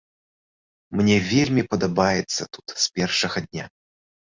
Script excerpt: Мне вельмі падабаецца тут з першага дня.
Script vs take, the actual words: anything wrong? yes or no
no